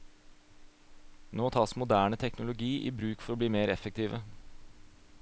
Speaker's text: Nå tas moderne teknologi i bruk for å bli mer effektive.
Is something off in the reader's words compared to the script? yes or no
no